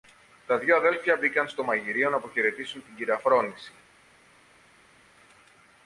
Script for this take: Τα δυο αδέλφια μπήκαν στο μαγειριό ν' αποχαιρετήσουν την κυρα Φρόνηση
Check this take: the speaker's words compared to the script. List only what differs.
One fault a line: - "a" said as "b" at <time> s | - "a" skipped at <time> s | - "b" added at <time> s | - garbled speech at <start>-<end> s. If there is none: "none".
none